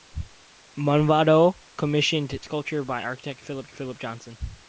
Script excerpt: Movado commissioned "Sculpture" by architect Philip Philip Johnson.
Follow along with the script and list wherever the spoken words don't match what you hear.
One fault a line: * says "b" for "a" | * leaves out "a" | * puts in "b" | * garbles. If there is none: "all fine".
all fine